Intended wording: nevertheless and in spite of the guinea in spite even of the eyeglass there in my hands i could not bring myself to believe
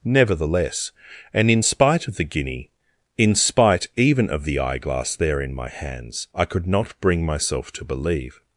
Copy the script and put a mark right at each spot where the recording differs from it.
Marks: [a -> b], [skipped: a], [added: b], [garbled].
nevertheless and in spite of the guinea in spite even of the eyeglass there in my hands i could not bring myself to believe